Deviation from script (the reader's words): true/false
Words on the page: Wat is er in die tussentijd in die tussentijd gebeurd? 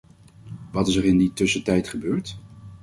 true